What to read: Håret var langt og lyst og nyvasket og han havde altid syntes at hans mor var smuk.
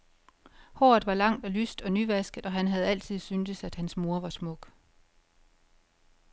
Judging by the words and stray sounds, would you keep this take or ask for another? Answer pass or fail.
pass